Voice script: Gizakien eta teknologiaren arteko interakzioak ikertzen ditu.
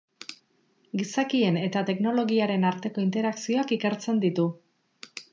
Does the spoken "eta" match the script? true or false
true